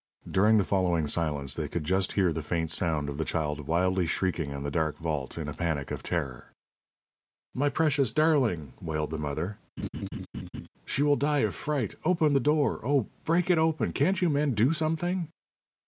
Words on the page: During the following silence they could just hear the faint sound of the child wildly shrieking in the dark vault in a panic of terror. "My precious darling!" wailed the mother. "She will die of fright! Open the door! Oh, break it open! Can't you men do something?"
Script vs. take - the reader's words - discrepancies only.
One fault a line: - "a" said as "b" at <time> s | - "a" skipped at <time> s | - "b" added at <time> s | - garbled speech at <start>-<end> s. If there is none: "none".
none